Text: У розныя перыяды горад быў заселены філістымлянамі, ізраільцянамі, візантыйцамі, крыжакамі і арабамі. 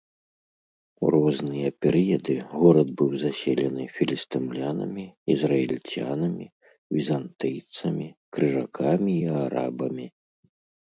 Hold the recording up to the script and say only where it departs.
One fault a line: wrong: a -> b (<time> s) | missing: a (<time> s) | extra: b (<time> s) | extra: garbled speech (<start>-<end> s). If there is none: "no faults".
no faults